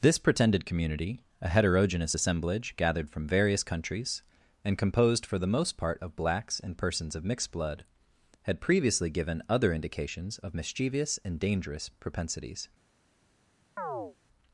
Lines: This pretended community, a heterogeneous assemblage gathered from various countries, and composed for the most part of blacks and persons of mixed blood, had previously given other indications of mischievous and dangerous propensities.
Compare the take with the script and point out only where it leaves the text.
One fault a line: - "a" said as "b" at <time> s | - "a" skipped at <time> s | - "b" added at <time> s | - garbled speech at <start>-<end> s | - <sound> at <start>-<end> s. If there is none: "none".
- chirp at 13.8-14.2 s